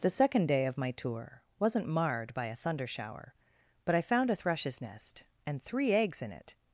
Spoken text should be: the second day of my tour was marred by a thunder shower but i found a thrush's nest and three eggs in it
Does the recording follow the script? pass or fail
fail